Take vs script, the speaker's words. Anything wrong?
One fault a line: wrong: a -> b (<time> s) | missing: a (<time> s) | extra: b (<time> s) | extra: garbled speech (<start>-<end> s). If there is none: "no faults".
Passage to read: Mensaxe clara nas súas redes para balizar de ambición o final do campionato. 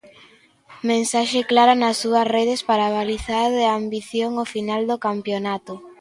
no faults